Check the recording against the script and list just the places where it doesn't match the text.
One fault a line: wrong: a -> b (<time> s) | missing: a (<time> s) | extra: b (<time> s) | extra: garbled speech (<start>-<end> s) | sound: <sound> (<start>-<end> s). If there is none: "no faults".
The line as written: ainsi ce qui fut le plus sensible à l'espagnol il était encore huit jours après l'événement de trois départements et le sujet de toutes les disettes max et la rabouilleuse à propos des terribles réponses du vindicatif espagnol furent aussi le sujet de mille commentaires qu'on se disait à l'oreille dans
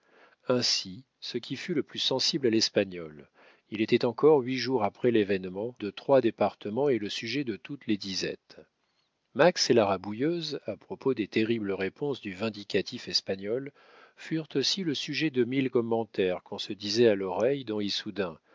no faults